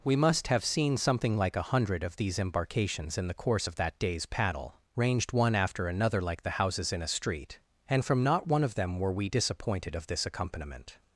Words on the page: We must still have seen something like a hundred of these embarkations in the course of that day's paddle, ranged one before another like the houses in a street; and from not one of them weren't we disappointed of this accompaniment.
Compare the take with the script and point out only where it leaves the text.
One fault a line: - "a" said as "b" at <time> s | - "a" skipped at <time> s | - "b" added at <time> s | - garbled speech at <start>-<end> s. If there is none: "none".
- "still" skipped at 0.5 s
- "before" said as "after" at 5.5 s
- "weren't" said as "were" at 9.0 s